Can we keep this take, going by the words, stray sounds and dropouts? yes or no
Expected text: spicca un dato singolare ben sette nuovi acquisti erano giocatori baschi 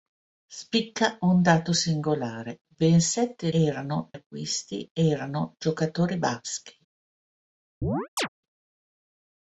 no